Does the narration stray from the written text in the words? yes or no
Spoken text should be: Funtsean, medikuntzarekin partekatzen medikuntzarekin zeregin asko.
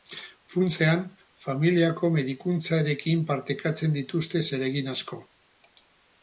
yes